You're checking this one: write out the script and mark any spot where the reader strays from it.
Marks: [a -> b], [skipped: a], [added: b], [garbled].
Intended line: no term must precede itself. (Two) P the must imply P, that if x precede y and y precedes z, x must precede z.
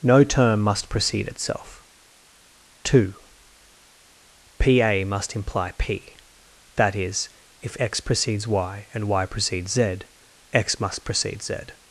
no term must precede itself. (Two) P [the -> a] must imply P, that [added: is] if x [precede -> precedes] y and y precedes z, x must precede z.